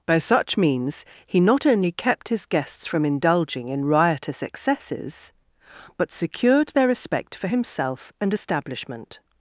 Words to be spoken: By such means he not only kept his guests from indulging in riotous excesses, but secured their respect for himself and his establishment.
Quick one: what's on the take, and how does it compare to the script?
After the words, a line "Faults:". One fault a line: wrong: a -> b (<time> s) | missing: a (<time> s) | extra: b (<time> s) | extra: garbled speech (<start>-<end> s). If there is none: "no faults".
By such means he not only kept his guests from indulging in riotous excesses, but secured their respect for himself and establishment.
Faults:
missing: his (8.3 s)